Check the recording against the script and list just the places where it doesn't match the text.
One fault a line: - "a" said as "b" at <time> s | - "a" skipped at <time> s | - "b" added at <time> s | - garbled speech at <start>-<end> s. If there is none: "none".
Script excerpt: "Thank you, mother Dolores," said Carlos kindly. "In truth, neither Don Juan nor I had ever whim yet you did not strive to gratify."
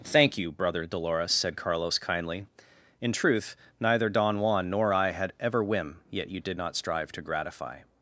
- "mother" said as "brother" at 0.5 s